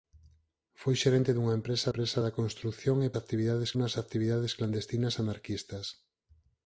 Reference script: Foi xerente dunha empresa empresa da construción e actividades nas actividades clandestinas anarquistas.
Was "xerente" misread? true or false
false